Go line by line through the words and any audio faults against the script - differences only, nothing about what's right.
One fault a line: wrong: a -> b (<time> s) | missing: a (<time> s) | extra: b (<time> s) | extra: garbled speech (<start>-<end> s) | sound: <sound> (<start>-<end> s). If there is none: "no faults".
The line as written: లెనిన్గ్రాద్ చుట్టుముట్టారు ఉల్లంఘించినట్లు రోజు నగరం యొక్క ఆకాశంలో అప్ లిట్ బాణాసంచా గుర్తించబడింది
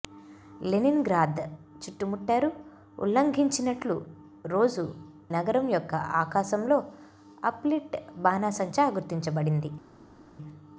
no faults